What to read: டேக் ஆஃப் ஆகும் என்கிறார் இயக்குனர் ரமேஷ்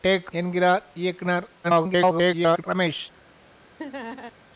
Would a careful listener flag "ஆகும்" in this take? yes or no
yes